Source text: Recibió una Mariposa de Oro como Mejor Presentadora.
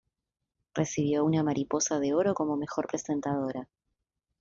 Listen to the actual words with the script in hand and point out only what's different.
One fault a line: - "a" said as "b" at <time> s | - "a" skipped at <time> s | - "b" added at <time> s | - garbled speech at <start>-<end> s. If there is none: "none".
none